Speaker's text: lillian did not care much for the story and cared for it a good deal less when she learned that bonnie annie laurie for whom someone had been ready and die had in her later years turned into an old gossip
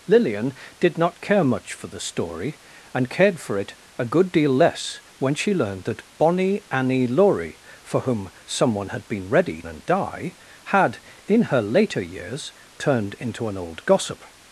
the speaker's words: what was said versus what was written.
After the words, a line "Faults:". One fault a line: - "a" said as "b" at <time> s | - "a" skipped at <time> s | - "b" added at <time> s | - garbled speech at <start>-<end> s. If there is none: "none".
lillian did not care much for the story and cared for it a good deal less when she learned that bonnie annie laurie for whom someone had been ready and die had in her later years turned into an old gossip
Faults:
none